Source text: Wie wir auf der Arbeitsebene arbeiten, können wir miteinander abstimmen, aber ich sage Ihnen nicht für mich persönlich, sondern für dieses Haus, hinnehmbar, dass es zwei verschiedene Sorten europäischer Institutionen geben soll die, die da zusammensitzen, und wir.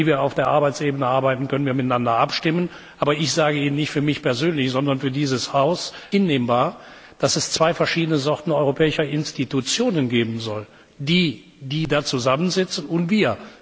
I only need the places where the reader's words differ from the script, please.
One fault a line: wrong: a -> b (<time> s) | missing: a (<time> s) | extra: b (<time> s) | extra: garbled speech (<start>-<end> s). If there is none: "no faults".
no faults